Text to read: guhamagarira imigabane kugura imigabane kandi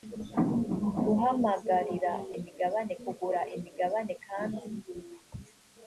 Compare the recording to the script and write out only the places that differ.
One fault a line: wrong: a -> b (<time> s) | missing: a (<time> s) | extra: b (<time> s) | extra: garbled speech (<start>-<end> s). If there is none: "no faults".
no faults